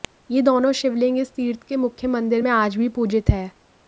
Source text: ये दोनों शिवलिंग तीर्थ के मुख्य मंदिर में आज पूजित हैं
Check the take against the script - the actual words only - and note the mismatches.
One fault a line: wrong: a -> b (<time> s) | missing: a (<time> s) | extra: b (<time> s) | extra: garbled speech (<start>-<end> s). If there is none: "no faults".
extra: इस (1.2 s)
extra: भी (2.8 s)